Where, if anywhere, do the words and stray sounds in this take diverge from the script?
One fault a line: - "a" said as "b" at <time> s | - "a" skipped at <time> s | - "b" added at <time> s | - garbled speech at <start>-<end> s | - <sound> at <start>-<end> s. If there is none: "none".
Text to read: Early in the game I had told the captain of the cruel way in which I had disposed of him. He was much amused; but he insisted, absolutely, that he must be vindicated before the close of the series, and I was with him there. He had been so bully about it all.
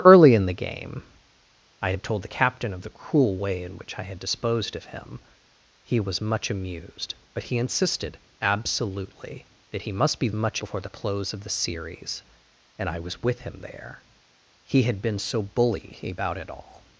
- "vindicated" said as "much" at 10.3 s